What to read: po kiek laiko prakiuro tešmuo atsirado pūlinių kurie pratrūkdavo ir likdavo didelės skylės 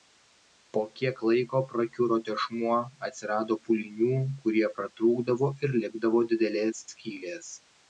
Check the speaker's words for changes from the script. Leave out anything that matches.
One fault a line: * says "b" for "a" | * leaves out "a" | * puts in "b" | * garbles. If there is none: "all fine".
all fine